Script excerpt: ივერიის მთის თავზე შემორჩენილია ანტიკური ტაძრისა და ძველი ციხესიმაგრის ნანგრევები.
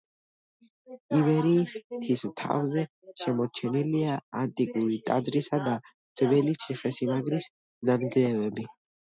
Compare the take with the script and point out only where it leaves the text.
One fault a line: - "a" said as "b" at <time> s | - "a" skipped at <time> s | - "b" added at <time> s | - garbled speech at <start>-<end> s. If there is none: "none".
none